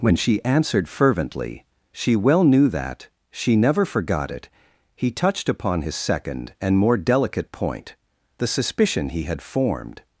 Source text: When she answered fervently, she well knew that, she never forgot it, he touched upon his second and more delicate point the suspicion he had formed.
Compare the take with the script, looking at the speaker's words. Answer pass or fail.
pass